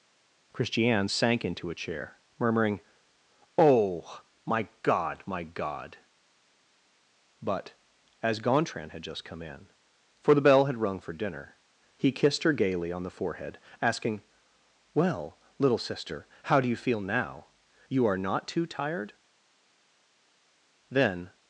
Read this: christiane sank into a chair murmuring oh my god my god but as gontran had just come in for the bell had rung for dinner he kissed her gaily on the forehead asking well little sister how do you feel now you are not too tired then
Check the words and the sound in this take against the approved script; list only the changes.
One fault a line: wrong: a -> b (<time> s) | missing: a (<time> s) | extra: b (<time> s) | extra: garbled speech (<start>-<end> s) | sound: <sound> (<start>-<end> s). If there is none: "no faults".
no faults